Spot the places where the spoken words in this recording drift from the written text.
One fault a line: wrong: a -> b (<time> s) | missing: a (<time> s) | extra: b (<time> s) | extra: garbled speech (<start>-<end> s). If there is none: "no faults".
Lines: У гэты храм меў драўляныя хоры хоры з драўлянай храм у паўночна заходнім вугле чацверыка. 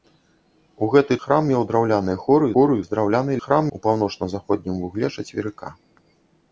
no faults